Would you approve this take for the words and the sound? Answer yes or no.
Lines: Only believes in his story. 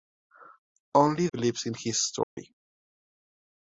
no